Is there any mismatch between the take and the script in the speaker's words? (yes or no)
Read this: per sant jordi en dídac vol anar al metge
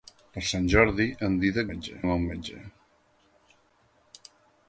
yes